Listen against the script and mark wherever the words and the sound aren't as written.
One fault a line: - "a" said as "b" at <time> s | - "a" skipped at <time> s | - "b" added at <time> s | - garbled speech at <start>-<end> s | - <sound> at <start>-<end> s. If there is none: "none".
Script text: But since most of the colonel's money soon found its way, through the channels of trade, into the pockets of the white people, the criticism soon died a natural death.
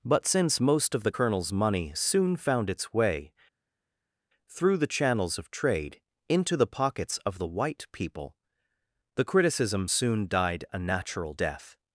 none